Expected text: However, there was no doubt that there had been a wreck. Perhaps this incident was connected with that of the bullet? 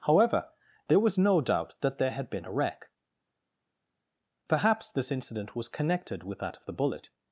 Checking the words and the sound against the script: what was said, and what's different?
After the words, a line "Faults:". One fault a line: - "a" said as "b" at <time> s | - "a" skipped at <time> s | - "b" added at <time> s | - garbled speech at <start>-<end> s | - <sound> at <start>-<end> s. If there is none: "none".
However, there was no doubt that there had been a wreck. Perhaps this incident was connected with that of the bullet?
Faults:
none